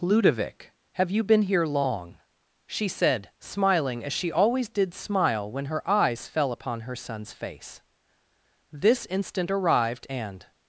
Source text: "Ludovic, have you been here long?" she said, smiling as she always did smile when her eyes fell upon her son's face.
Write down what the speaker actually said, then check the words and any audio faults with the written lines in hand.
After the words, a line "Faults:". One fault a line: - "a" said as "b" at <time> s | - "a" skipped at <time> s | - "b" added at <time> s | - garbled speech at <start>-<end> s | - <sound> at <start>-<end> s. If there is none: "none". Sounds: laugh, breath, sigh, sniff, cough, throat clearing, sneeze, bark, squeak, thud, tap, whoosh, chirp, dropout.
"Ludovic, have you been here long?" she said, smiling as she always did smile when her eyes fell upon her son's face. "This instant arrived; and
Faults:
- "This instant arrived and" added at 8.7 s